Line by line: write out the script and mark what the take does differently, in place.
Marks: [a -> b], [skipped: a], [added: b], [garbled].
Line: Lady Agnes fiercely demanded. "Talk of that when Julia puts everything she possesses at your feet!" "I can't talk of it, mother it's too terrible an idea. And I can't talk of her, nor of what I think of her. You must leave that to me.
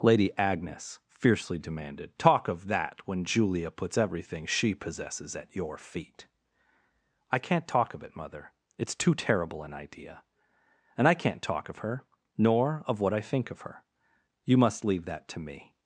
Lady Agnes fiercely demanded. "Talk of that when Julia puts everything she possesses at your feet!" "I can't talk of it, mother it's too terrible an idea. And I can't talk of her, nor of what I think of her. You must leave that to me.